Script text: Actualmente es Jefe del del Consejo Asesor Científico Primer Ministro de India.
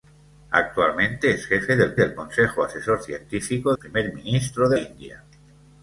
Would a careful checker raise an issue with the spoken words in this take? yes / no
no